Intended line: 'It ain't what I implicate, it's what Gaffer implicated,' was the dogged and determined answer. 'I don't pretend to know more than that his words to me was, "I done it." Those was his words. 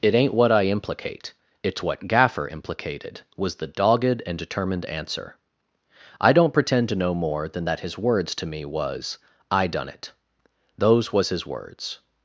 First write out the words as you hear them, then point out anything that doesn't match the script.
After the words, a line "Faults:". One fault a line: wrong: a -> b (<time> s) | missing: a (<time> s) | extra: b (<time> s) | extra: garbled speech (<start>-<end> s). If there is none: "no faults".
'It ain't what I implicate, it's what Gaffer implicated,' was the dogged and determined answer. 'I don't pretend to know more than that his words to me was, "I done it." Those was his words.
Faults:
no faults